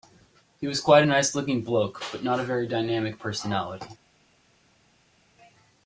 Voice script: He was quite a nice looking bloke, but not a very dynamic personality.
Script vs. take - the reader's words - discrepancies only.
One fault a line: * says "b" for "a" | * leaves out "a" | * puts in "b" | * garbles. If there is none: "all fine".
all fine